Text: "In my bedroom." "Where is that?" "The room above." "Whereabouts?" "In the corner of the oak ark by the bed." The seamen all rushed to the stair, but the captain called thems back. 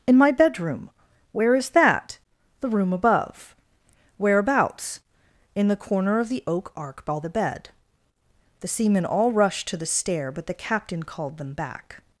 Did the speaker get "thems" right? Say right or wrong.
wrong